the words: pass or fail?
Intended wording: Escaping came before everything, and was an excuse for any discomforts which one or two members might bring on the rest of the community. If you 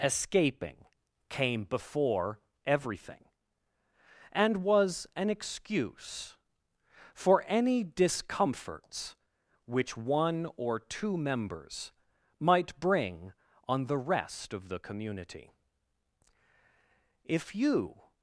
pass